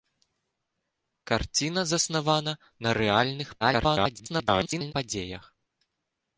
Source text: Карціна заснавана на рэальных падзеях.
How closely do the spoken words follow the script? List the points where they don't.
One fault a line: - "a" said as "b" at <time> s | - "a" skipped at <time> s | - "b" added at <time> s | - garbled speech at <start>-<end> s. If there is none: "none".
- garbled speech at 3.6-4.9 s